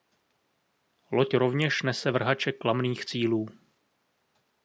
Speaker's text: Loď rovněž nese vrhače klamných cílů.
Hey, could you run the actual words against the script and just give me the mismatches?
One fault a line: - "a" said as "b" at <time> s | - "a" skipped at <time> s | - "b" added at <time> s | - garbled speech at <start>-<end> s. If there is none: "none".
none